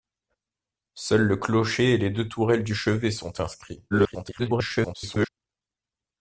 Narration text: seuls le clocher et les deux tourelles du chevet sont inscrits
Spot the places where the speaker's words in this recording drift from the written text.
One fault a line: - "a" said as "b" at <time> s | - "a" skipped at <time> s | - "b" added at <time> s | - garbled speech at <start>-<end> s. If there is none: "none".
- garbled speech at 3.9-5.3 s